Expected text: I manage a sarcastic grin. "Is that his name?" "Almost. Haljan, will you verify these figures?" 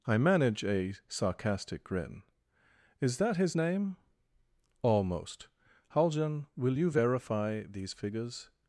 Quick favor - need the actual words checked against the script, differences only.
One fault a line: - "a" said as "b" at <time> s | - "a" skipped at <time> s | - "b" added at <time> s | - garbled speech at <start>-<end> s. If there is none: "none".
none